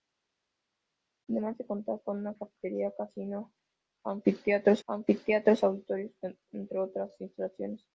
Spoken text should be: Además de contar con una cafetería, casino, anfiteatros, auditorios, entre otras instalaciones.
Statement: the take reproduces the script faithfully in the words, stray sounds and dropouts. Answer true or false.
false